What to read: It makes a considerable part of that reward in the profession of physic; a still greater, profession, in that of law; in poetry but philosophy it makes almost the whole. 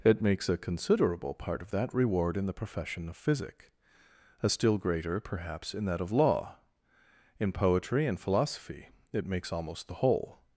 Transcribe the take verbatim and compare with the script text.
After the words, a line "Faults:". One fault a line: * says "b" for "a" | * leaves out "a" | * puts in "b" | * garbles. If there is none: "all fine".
It makes a considerable part of that reward in the profession of physic; a still greater, perhaps, in that of law; in poetry and philosophy it makes almost the whole.
Faults:
* says "perhaps" for "profession"
* says "and" for "but"